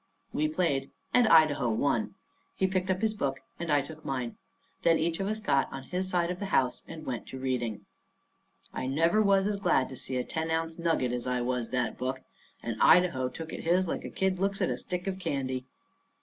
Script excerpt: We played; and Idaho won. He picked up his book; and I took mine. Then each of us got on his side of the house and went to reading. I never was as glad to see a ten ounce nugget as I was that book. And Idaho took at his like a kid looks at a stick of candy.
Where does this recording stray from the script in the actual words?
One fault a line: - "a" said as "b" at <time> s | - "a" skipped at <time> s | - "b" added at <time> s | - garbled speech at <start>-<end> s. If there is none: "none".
none